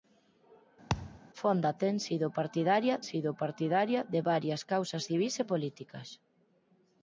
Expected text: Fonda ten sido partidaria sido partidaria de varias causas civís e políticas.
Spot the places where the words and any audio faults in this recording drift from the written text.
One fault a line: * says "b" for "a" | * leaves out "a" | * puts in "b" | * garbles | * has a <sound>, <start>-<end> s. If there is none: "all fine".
* has a thud, 0.9-1.2 s